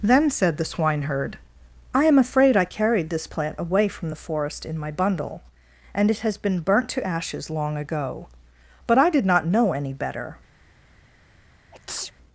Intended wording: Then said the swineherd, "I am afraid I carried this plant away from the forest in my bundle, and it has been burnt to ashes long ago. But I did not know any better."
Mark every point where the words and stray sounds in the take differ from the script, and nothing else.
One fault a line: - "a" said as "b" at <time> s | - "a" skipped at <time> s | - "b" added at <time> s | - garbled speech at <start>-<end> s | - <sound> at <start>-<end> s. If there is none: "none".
- sneeze at 11.7-12.1 s